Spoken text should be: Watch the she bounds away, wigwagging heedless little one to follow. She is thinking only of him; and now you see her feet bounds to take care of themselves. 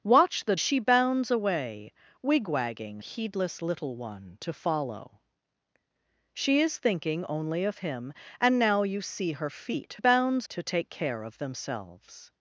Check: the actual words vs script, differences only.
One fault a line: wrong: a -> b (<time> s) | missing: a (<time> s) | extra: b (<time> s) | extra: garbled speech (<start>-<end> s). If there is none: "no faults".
no faults